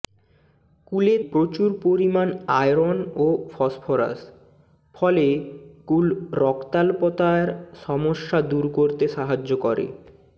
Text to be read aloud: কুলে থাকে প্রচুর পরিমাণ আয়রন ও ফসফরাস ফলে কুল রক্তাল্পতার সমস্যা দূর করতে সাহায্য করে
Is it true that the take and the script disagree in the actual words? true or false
true